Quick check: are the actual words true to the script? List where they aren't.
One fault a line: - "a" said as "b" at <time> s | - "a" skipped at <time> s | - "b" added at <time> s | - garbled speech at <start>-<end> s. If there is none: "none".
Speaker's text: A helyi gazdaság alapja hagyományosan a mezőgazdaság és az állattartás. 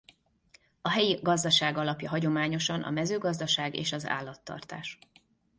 none